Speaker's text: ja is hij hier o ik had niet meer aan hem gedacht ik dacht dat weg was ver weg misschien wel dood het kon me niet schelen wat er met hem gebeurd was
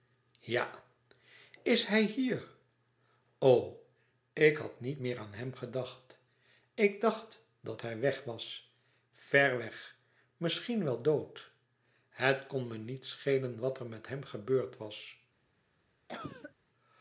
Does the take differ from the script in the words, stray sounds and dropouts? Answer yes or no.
yes